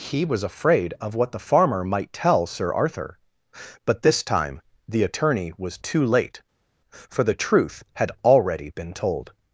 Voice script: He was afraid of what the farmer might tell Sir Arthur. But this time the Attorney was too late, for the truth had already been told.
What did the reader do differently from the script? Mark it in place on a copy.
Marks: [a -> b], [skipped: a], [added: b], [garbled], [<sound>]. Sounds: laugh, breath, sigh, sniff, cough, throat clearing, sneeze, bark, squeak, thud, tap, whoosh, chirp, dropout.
He was afraid of what the farmer might tell Sir Arthur. But this time the Attorney was too late, for the truth had already been told.